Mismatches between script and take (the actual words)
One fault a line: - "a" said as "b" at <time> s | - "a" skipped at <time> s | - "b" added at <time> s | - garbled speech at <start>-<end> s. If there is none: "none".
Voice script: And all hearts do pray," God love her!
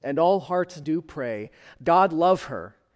none